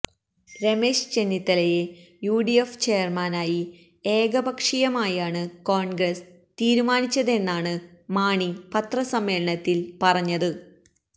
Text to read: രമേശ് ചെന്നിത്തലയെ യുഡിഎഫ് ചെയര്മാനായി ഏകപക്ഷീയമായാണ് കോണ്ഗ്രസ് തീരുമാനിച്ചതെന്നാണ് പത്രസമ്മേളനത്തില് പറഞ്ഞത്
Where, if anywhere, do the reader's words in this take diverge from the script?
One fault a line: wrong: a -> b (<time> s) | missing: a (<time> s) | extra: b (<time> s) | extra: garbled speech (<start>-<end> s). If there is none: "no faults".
extra: മാണി (8.1 s)